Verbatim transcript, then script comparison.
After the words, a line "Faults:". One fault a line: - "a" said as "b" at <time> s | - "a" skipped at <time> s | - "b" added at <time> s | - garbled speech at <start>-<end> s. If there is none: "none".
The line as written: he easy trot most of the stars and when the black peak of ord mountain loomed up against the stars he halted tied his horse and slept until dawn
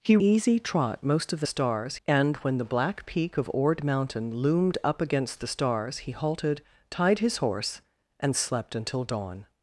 he easy trot most of the stars and when the black peak of ord mountain loomed up against the stars he halted tied his horse and slept until dawn
Faults:
none